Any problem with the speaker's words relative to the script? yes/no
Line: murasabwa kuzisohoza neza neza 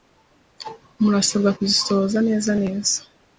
no